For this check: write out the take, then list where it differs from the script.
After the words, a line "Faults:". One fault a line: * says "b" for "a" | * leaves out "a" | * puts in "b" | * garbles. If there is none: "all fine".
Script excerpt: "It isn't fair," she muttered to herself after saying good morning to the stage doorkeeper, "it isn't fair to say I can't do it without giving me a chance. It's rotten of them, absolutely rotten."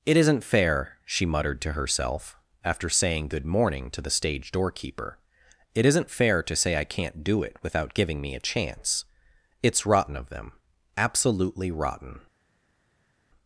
"It isn't fair," she muttered to herself after saying good morning to the stage doorkeeper, "it isn't fair to say I can't do it without giving me a chance. It's rotten of them, absolutely rotten."
Faults:
all fine